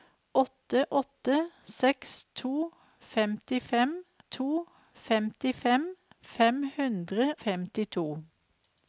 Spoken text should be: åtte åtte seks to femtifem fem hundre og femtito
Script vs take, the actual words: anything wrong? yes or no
yes